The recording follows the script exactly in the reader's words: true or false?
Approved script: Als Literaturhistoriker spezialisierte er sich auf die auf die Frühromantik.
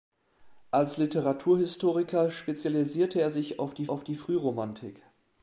true